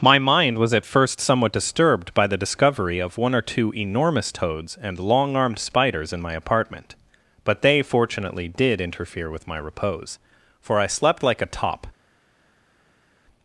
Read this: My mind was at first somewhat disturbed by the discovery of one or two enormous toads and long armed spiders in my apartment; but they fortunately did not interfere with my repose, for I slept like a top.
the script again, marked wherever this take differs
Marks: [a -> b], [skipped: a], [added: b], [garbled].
My mind was at first somewhat disturbed by the discovery of one or two enormous toads and long armed spiders in my apartment; but they fortunately did [skipped: not] interfere with my repose, for I slept like a top.